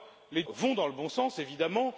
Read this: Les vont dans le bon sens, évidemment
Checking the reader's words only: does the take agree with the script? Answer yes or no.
yes